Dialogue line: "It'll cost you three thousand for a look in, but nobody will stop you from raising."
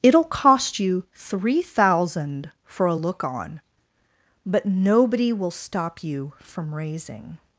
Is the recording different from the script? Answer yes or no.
yes